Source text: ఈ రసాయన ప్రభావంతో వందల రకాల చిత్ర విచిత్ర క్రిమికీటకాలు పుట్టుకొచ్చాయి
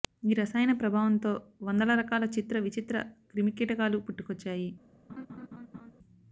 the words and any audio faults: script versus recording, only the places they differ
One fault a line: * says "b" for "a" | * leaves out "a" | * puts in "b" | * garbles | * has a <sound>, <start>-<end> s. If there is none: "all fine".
* has a laugh, 5.1-5.9 s